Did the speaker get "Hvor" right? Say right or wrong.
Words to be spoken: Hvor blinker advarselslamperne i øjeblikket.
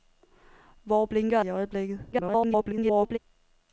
right